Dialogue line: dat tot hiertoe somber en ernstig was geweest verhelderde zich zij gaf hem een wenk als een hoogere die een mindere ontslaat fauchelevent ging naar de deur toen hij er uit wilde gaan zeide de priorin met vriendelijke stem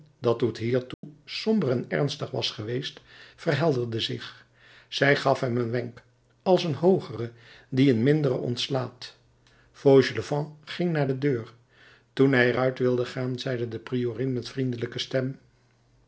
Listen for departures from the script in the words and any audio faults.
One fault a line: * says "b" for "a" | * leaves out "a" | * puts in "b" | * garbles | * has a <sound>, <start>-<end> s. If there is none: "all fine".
* has a dropout, 0.9-1.0 s